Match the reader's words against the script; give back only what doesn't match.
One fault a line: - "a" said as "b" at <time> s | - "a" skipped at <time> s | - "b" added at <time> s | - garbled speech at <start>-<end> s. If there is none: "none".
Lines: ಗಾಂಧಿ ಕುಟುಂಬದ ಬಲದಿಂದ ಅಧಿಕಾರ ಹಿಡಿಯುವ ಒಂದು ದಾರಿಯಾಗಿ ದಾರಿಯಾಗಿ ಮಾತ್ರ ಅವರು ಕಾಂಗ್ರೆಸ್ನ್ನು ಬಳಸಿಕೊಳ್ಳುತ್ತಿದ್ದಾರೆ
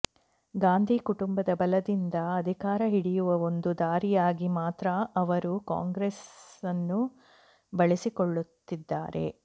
- "ದಾರಿಯಾಗಿ" skipped at 4.5 s